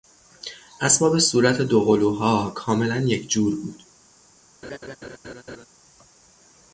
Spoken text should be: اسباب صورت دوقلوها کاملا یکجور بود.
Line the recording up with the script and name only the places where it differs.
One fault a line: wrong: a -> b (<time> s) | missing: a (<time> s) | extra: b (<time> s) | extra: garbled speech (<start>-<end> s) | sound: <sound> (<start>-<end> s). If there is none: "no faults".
sound: laugh (4.6-5.7 s)